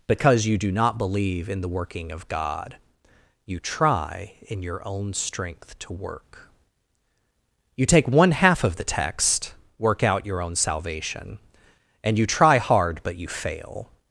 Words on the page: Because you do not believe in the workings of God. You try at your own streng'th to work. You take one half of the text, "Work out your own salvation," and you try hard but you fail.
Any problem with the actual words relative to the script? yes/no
yes